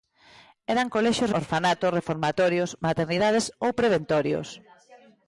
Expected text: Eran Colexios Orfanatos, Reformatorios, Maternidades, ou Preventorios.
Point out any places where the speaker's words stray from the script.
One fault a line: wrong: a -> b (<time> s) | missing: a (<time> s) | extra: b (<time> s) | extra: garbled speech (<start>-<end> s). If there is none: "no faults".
no faults